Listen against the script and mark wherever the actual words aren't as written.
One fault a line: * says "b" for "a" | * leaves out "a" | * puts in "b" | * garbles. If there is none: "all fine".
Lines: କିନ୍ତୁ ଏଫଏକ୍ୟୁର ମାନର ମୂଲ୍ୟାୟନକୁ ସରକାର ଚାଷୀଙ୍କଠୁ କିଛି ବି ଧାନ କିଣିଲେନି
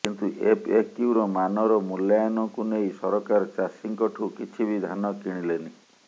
* puts in "ନେଇ"